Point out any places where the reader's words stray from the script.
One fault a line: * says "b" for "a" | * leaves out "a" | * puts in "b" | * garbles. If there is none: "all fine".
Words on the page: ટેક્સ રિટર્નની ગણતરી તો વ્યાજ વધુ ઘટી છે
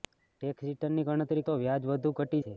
all fine